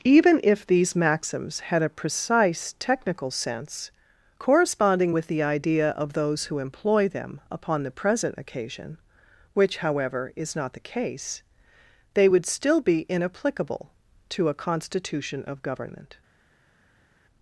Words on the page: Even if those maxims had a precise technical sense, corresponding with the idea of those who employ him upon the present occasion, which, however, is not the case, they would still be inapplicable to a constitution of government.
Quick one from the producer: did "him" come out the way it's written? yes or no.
no